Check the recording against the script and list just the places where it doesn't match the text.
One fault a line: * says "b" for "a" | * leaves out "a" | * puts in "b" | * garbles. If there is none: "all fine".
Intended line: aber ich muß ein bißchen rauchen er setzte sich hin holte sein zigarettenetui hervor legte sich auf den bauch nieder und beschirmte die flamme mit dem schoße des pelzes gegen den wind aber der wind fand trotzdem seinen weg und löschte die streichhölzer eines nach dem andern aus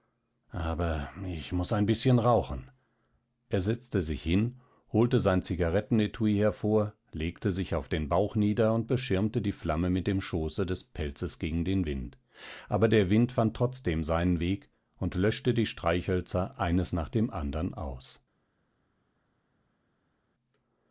all fine